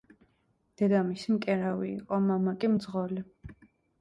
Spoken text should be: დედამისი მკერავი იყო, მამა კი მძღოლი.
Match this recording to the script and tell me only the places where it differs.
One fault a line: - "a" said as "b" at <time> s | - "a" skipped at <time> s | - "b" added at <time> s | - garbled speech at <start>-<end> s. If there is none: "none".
none